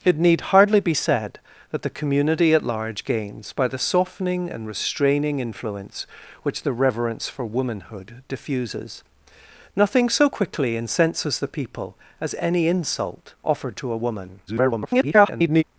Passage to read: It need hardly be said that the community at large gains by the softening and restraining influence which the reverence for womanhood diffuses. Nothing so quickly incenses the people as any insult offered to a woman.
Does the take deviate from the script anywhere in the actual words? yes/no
yes